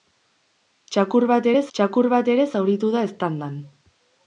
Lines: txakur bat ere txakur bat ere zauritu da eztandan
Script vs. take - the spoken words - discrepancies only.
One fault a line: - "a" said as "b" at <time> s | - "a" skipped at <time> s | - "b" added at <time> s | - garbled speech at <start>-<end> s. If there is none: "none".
none